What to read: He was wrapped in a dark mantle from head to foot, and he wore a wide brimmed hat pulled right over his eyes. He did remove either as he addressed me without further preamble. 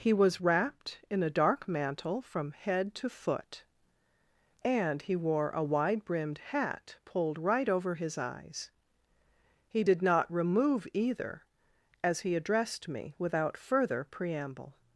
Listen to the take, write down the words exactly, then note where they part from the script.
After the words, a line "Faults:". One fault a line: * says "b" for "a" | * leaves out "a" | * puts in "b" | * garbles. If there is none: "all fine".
He was wrapped in a dark mantle from head to foot, and he wore a wide brimmed hat pulled right over his eyes. He did not remove either as he addressed me without further preamble.
Faults:
* puts in "not"